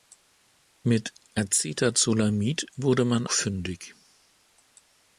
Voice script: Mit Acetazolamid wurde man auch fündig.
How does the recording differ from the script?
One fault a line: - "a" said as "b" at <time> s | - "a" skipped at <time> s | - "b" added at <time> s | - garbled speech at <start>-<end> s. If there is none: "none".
- "auch" skipped at 3.3 s